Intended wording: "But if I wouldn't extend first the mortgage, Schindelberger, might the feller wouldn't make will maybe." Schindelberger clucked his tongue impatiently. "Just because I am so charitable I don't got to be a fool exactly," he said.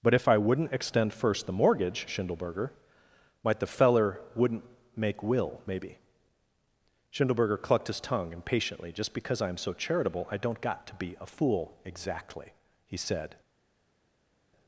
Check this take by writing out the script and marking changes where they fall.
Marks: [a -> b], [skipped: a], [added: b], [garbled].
"But if I wouldn't extend first the mortgage, Schindelberger, might the feller wouldn't make will maybe." Schindelberger clucked his tongue impatiently. "Just because I am so charitable I don't got to be a fool exactly," he said.